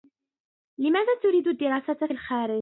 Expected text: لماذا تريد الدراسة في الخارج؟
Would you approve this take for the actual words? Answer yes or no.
yes